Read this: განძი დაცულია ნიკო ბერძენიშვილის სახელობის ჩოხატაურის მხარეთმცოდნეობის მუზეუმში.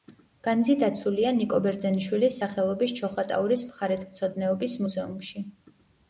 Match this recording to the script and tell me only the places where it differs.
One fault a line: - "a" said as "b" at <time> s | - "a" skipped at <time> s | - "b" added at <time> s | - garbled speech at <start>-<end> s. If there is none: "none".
none